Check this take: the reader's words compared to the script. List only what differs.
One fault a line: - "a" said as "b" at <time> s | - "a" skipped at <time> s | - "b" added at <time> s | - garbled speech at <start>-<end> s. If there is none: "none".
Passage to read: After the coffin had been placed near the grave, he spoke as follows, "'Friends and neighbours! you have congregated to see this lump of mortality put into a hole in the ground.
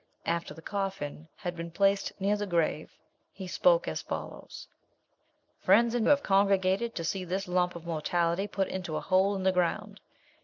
- "neighbours you" skipped at 6.0 s